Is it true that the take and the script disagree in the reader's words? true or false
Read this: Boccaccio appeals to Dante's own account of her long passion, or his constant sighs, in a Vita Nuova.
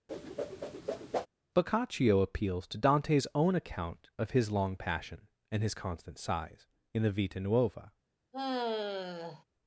true